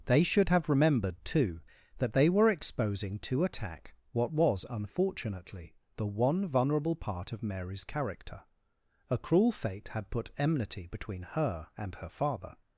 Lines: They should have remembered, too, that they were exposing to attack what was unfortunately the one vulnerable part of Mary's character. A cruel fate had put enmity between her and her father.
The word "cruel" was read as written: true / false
true